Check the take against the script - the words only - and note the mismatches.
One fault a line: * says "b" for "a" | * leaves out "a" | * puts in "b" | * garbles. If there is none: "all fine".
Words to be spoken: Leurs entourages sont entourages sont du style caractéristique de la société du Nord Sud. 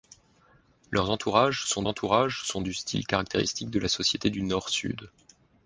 all fine